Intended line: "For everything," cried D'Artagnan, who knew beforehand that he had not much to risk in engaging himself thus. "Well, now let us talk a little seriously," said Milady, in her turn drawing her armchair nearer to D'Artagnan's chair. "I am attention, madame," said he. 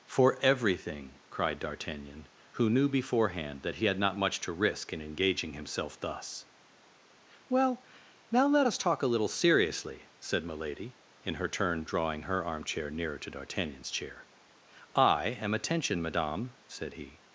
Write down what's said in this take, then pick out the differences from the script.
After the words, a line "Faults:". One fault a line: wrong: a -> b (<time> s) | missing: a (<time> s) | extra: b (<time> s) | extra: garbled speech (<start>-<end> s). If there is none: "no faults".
"For everything," cried D'Artagnan, who knew beforehand that he had not much to risk in engaging himself thus. "Well, now let us talk a little seriously," said Milady, in her turn drawing her armchair nearer to D'Artagnan's chair. "I am attention, madame," said he.
Faults:
no faults